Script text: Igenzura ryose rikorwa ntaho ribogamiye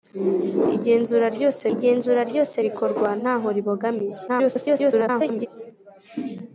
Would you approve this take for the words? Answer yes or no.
no